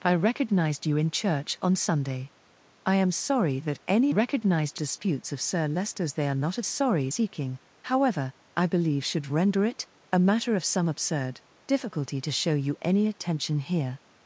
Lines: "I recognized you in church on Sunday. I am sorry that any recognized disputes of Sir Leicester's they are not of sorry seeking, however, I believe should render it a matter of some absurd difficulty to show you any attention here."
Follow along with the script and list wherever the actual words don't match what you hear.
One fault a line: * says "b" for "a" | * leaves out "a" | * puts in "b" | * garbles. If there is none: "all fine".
all fine